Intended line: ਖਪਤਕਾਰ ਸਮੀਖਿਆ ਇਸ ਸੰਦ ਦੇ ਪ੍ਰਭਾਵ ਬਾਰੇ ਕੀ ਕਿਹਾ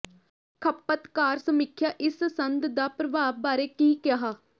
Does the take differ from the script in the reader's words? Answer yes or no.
yes